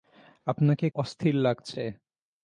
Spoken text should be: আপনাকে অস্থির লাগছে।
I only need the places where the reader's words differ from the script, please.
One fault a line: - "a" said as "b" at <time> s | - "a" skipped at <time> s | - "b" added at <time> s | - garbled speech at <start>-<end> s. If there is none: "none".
none